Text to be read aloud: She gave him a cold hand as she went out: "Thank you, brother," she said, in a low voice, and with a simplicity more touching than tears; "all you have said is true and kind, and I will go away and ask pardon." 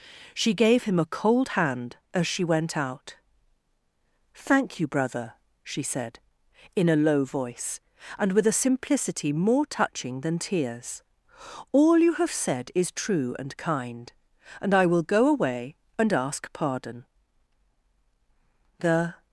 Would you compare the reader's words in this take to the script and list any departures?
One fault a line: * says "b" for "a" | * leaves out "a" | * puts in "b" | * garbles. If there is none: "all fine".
* puts in "The"